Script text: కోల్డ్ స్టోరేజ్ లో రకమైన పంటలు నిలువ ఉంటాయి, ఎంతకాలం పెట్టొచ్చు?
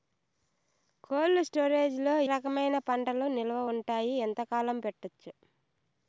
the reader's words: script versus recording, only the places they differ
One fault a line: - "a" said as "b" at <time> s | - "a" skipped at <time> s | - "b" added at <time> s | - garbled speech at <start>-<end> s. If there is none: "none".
none